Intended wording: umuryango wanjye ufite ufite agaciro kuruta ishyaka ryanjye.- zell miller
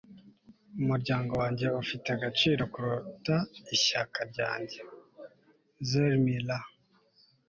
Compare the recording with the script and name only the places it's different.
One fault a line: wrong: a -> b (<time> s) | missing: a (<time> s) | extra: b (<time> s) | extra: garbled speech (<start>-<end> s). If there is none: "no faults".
missing: ufite (2.1 s)